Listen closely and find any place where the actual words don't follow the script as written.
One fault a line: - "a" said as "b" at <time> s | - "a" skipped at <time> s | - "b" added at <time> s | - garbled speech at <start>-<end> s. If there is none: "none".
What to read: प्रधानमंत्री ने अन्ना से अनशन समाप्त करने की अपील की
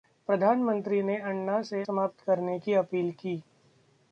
- "अनशन" skipped at 1.8 s